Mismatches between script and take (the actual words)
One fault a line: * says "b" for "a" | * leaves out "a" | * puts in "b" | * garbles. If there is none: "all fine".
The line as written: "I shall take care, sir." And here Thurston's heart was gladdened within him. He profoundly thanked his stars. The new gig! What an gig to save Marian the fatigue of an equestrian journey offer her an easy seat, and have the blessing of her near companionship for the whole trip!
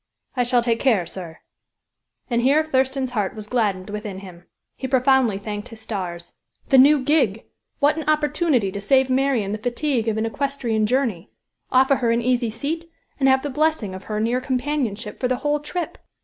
* says "opportunity" for "gig"